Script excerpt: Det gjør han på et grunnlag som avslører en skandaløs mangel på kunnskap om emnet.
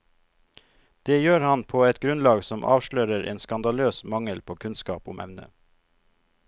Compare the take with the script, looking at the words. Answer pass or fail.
pass